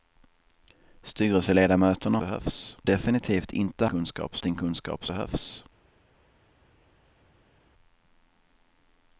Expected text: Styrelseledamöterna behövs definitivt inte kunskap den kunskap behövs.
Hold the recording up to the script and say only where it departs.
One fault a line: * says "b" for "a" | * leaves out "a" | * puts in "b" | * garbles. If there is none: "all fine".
all fine